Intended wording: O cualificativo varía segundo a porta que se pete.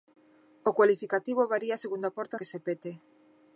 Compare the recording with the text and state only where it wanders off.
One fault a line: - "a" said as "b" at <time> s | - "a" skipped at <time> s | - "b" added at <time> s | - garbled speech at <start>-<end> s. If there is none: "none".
none